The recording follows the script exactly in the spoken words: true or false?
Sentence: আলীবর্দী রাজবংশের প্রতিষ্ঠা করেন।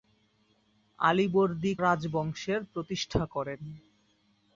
true